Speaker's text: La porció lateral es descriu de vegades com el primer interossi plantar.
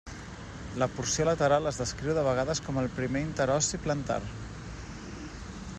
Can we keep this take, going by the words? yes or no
yes